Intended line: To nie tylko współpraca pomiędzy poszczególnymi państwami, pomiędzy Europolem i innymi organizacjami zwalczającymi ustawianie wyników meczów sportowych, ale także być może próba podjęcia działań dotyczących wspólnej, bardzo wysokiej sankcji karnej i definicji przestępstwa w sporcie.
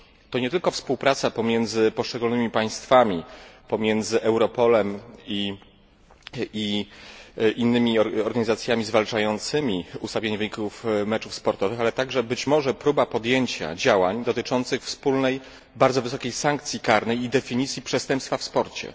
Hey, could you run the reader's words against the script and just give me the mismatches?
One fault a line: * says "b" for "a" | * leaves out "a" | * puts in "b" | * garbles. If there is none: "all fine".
all fine